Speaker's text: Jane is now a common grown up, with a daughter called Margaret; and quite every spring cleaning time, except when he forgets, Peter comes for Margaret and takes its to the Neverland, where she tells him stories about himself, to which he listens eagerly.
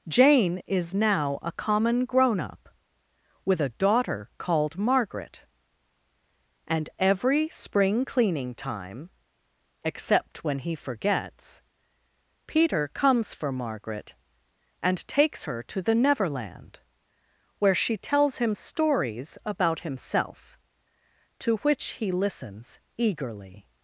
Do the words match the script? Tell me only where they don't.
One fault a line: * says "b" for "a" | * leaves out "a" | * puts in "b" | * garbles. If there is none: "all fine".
* leaves out "quite"
* says "her" for "its"